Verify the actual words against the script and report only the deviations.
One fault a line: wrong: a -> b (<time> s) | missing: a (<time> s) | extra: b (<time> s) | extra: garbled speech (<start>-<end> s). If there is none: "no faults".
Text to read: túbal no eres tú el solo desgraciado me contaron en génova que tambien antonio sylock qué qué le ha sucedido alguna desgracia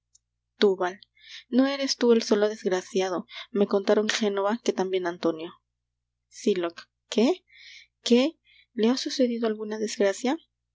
missing: en (4.1 s)